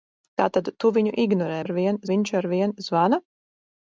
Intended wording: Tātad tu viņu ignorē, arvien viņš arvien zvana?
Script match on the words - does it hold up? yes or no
yes